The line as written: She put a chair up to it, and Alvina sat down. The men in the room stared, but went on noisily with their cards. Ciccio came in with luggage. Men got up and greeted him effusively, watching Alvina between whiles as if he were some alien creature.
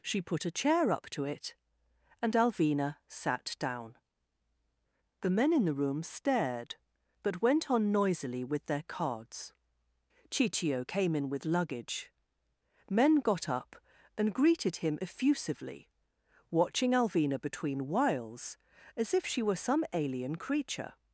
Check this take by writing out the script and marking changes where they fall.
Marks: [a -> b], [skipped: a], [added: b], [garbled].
She put a chair up to it, and Alvina sat down. The men in the room stared, but went on noisily with their cards. Ciccio came in with luggage. Men got up and greeted him effusively, watching Alvina between whiles as if [he -> she] were some alien creature.